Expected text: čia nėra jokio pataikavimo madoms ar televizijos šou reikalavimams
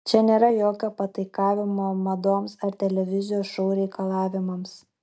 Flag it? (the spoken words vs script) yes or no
no